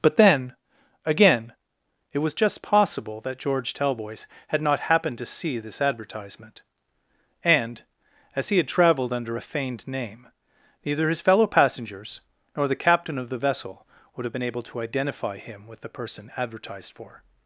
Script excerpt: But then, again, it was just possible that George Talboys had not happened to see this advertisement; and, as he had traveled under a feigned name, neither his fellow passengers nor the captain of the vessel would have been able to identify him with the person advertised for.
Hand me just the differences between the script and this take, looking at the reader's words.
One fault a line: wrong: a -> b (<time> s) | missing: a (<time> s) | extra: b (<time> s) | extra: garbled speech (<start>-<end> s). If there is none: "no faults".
no faults